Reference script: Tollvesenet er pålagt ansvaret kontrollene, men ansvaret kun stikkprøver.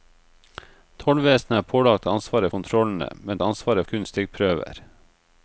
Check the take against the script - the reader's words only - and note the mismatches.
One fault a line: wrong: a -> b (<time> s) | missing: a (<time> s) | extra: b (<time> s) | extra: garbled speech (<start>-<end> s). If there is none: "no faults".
no faults